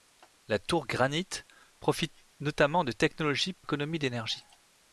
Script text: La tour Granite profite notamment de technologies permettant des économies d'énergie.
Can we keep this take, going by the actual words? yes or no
no